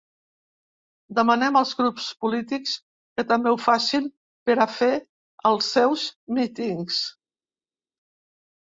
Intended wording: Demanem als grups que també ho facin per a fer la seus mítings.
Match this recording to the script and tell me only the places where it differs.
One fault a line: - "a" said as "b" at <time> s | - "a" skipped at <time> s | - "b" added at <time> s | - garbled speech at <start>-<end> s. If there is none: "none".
- "polítics" added at 2.2 s
- "la" said as "els" at 5.6 s